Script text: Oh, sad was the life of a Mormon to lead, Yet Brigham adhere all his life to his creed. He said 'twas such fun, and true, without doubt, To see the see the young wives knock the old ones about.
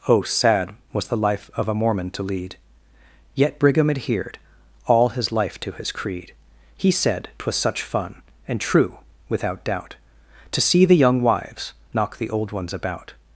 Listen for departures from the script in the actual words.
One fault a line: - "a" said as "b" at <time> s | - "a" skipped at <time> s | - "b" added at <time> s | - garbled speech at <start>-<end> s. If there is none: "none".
- "adhere" said as "adhered" at 3.9 s
- "see the" skipped at 11.0 s